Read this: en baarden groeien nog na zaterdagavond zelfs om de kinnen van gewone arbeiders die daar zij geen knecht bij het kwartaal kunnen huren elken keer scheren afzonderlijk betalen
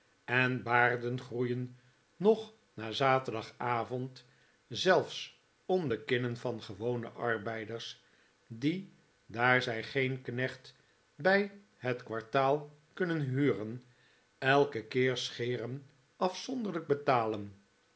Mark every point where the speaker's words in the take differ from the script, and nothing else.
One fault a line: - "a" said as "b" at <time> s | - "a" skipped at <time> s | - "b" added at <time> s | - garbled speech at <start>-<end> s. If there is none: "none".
none